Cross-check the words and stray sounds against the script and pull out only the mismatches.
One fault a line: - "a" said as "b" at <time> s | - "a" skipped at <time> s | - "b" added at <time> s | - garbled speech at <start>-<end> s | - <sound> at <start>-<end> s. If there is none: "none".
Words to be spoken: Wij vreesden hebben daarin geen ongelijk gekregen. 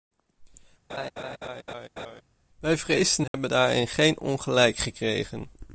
- laugh at 0.9-2.2 s
- dropout at 3.3-3.3 s